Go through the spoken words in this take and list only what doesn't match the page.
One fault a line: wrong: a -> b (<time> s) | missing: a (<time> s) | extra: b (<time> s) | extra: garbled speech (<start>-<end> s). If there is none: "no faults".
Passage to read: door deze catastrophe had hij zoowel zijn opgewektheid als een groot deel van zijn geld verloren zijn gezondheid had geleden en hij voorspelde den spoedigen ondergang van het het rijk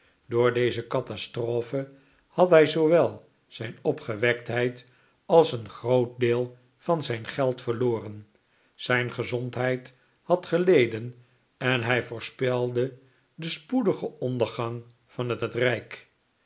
no faults